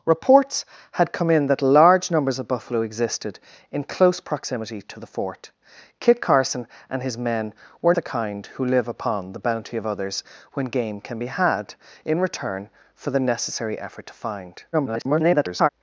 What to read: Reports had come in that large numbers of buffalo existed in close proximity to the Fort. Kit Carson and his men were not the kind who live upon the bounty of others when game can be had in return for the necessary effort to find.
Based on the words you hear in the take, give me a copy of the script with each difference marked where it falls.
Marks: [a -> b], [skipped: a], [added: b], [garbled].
Reports had come in that large numbers of buffalo existed in close proximity to the Fort. Kit Carson and his men were [skipped: not] the kind who live upon the bounty of others when game can be had in return for the necessary effort to find. [garbled]